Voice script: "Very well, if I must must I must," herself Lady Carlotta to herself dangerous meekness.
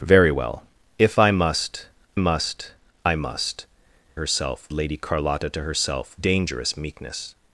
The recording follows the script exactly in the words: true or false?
true